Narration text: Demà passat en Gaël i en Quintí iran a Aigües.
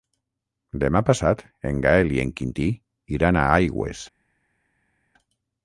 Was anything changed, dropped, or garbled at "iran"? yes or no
no